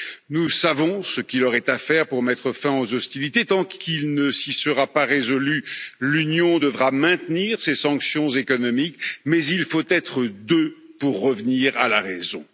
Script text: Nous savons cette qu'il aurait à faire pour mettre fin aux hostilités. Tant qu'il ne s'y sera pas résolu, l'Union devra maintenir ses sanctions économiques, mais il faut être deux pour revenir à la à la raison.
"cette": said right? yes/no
no